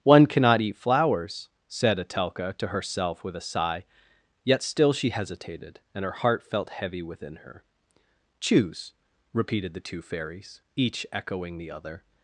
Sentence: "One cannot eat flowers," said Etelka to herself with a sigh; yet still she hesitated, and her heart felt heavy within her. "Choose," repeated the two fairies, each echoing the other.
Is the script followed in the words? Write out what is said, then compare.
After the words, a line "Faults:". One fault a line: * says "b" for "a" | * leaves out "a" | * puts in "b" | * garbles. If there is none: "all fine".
"One cannot eat flowers," said Etelka to herself with a sigh; yet still she hesitated, and her heart felt heavy within her. "Choose," repeated the two fairies, each echoing the other.
Faults:
all fine